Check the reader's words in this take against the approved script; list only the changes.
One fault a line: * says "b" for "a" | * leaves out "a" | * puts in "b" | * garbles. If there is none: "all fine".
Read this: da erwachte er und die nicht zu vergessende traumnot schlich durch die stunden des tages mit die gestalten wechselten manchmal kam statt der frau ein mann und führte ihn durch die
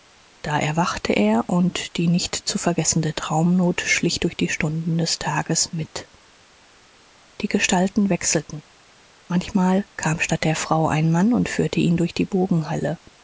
all fine